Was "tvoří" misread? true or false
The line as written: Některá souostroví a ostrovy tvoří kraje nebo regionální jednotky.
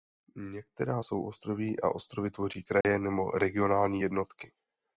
false